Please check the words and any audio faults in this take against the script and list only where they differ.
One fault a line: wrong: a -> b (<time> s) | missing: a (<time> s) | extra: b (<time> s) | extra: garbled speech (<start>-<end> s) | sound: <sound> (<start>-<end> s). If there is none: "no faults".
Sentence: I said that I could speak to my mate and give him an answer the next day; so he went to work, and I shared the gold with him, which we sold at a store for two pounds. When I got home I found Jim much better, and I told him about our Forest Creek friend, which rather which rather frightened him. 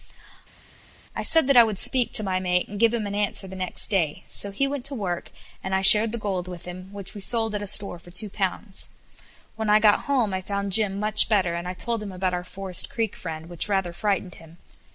wrong: could -> would (1.6 s)
missing: which rather (13.9 s)